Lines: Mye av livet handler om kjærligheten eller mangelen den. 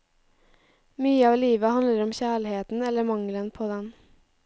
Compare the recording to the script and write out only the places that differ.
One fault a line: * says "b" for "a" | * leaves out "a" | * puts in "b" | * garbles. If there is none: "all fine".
* puts in "på"